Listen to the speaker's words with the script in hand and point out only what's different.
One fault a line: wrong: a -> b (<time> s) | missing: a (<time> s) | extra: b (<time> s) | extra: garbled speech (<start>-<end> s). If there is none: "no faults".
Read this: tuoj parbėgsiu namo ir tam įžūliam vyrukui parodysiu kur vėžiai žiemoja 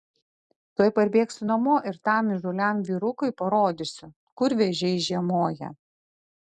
no faults